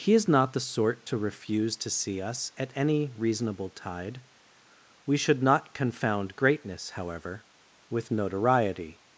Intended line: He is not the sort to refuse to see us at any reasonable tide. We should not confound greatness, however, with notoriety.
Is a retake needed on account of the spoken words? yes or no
no